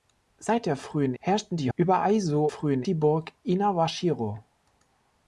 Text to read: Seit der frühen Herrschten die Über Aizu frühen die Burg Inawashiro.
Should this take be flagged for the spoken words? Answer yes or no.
no